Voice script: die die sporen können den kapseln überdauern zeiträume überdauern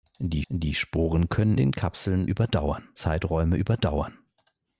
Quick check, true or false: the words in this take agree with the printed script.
true